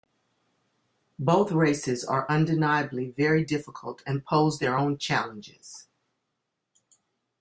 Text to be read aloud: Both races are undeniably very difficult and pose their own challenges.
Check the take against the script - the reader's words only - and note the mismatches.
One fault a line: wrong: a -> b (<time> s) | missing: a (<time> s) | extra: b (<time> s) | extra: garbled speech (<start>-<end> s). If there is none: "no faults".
no faults